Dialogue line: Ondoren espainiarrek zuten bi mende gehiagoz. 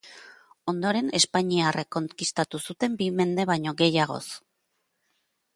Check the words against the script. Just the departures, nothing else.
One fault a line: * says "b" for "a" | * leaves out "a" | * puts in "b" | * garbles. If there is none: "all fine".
* puts in "konkistatu"
* puts in "baino"